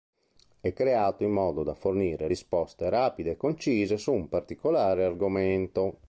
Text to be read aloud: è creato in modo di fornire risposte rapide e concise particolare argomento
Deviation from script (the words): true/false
true